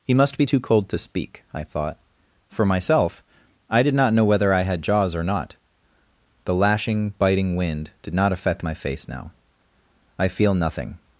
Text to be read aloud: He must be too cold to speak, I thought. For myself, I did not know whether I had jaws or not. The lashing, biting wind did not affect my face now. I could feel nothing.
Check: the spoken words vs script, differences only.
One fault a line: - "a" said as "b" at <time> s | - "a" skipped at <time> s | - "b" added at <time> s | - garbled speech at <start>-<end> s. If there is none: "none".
- "could" skipped at 10.3 s